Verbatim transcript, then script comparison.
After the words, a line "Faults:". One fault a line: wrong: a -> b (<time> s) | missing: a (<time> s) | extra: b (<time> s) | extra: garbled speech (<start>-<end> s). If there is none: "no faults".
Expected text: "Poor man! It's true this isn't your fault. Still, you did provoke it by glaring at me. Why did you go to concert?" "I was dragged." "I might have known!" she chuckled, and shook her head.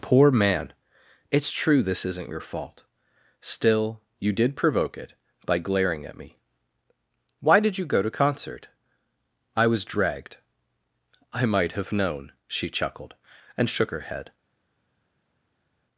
"Poor man! It's true this isn't your fault. Still, you did provoke it by glaring at me. Why did you go to concert?" "I was dragged." "I might have known!" she chuckled, and shook her head.
Faults:
no faults